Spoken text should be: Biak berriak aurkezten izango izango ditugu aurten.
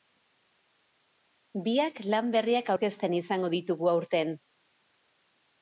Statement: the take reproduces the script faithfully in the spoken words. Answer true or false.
false